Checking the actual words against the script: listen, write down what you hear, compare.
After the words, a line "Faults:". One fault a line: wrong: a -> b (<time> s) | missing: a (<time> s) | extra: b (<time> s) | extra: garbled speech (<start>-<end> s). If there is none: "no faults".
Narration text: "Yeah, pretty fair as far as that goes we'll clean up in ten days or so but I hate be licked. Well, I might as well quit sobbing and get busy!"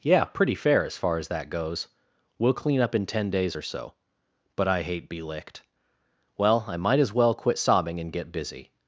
"Yeah, pretty fair as far as that goes we'll clean up in ten days or so but I hate be licked. Well, I might as well quit sobbing and get busy!"
Faults:
no faults